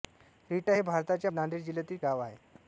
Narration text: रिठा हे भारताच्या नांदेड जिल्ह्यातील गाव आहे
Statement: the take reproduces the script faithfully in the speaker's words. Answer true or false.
true